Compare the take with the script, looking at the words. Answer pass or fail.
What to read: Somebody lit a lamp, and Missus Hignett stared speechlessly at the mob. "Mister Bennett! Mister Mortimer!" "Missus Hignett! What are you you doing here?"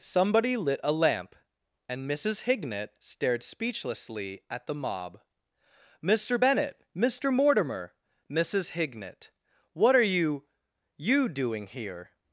pass